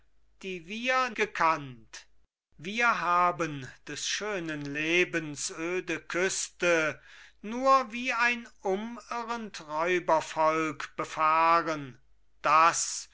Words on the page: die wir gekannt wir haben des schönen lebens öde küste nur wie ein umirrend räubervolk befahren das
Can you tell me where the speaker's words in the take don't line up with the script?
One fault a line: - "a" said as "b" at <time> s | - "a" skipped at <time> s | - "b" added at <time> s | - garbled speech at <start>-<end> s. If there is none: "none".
none